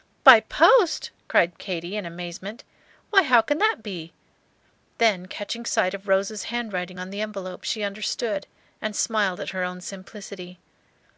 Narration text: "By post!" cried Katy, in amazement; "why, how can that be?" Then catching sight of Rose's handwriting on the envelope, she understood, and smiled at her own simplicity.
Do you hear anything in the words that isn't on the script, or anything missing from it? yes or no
no